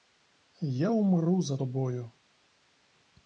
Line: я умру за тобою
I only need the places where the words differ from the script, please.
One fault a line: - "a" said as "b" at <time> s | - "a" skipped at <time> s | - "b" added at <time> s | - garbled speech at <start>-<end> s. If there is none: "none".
none